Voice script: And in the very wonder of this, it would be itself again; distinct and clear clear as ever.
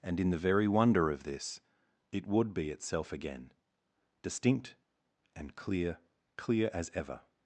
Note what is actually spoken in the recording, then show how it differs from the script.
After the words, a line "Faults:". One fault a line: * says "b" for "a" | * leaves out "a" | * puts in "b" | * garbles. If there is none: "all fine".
And in the very wonder of this, it would be itself again; distinct and clear clear as ever.
Faults:
all fine